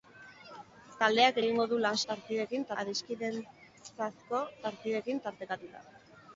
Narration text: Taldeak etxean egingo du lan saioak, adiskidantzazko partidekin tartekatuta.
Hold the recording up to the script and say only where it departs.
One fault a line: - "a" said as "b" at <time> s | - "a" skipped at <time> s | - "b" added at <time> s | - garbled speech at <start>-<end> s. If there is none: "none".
- "etxean" skipped at 1.4 s
- "saioak" said as "partidekin" at 2.1 s